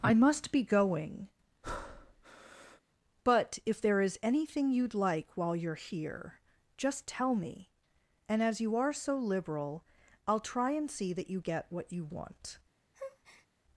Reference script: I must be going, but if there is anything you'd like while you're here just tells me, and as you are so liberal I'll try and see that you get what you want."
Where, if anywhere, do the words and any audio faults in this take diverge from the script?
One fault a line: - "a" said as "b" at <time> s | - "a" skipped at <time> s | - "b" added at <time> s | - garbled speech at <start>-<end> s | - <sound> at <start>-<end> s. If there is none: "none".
- breath at 1.6-2.8 s
- "tells" said as "tell" at 7.1 s
- breath at 12.9-13.5 s